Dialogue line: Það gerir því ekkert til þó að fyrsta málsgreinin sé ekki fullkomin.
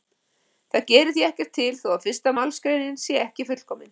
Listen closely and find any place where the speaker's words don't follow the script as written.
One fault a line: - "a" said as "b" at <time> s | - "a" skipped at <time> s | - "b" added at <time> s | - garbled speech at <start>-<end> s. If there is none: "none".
none